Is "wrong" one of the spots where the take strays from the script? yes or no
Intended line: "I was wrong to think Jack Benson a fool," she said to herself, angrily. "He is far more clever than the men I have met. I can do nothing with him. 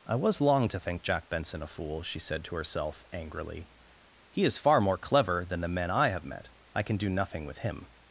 yes